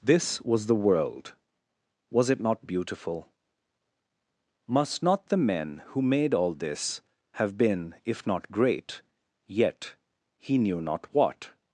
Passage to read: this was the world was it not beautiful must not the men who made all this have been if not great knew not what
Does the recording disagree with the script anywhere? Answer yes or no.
yes